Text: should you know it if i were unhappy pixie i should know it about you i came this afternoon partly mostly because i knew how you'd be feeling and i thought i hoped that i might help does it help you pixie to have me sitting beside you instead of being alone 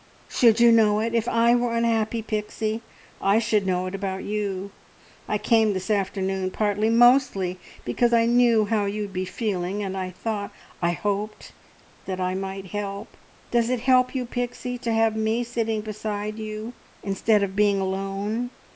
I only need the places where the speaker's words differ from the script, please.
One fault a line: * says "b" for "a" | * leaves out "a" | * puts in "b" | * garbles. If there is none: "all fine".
all fine